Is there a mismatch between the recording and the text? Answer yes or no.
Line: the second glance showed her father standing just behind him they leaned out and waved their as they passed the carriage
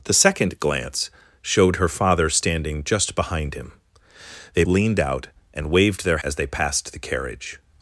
no